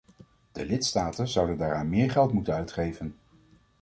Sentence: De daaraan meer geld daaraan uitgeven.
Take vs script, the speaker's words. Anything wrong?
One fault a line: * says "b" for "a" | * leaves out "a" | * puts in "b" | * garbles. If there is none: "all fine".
* puts in "lidstaten zouden"
* says "moeten" for "daaraan"